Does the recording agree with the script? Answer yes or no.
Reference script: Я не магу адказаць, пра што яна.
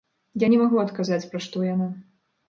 yes